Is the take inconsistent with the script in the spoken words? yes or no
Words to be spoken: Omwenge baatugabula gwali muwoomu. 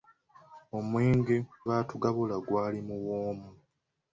no